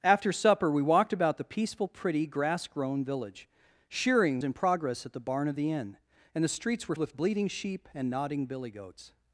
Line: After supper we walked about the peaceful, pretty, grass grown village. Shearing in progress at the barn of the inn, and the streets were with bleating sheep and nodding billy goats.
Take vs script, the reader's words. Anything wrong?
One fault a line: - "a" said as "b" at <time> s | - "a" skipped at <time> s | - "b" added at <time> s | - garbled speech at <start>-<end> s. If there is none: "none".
none